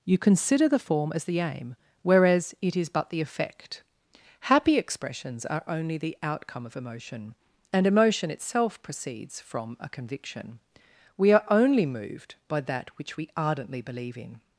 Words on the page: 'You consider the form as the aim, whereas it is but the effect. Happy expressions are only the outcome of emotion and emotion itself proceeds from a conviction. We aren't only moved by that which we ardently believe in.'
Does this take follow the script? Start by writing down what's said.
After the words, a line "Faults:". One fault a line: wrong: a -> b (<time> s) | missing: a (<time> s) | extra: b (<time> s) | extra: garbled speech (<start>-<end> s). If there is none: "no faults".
'You consider the form as the aim, whereas it is but the effect. Happy expressions are only the outcome of emotion and emotion itself proceeds from a conviction. We are only moved by that which we ardently believe in.'
Faults:
wrong: aren't -> are (11.3 s)